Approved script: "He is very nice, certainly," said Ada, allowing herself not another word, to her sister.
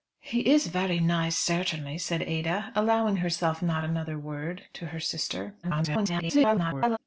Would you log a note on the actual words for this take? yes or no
yes